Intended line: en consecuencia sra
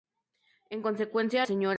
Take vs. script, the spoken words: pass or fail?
pass